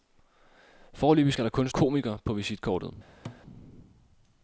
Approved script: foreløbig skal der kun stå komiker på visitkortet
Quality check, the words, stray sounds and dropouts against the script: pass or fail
fail